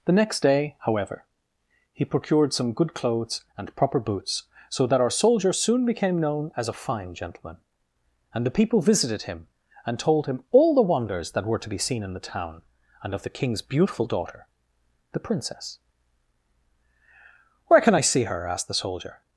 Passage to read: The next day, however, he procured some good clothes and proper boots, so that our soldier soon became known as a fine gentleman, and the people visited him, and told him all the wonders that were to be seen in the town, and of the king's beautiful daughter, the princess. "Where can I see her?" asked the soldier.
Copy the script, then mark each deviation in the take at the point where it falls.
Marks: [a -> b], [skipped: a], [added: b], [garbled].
The next day, however, he procured some good clothes and proper boots, so that our soldier soon became known as a fine gentleman, and the people visited him, and told him all the wonders that were to be seen in the town, and of the king's beautiful daughter, the princess. "Where can I see her?" asked the soldier.